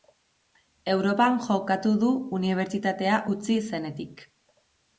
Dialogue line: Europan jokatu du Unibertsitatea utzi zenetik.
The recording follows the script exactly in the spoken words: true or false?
true